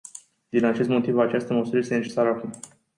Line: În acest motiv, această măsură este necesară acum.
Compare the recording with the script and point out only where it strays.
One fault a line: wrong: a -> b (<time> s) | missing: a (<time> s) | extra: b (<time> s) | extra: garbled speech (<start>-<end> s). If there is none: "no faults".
wrong: În -> Din (0.5 s)